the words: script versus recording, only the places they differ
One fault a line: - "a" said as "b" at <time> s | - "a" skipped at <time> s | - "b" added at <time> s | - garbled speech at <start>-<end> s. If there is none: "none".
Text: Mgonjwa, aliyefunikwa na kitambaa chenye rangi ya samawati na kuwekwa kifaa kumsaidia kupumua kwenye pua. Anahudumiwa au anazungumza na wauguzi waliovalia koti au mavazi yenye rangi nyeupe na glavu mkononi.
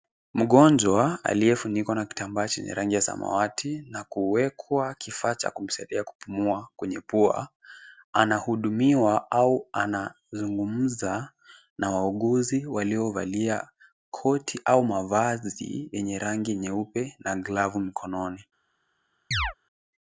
- "cha" added at 5.4 s